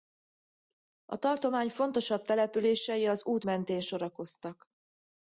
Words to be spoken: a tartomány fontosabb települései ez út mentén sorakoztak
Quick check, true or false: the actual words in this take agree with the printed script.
false